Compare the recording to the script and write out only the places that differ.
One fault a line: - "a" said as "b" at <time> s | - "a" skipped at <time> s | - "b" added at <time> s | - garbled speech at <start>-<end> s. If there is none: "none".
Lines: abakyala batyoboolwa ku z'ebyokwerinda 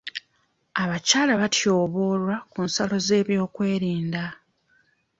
- "nsalo" added at 2.7 s